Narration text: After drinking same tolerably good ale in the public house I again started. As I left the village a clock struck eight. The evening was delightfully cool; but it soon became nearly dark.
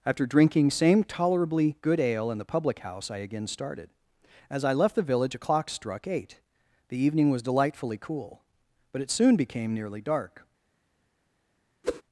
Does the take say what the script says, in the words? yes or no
yes